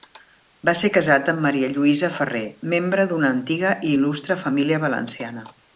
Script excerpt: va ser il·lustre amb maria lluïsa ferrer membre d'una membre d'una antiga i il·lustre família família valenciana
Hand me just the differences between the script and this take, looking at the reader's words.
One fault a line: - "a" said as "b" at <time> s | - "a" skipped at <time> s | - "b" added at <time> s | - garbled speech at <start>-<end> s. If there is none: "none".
- "il·lustre" said as "casat" at 0.9 s
- "membre d'una" skipped at 3.3 s
- "família" skipped at 4.8 s